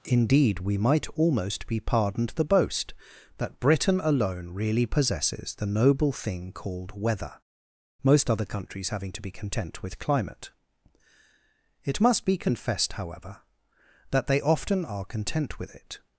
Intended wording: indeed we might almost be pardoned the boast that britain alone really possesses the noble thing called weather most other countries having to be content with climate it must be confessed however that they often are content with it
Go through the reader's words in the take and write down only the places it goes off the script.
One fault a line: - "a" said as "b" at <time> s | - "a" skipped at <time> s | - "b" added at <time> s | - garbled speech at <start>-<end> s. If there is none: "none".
none